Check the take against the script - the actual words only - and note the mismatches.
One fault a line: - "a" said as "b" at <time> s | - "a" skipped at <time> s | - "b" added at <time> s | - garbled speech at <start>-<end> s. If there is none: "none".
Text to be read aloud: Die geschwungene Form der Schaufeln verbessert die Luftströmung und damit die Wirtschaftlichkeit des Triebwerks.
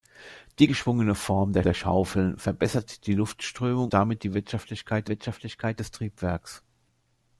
- "der" added at 1.6 s
- "und" skipped at 3.9 s
- "Wirtschaftlichkeit" added at 5.1 s